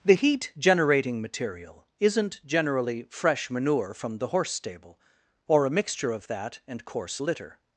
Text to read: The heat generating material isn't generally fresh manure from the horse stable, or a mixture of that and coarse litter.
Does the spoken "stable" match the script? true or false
true